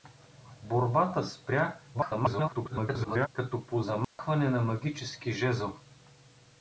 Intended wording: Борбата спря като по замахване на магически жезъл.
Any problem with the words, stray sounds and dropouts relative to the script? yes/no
yes